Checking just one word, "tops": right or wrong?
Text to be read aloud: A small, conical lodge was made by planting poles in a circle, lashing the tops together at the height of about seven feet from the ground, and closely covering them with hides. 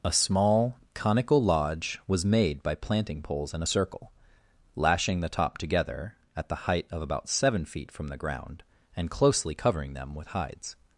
wrong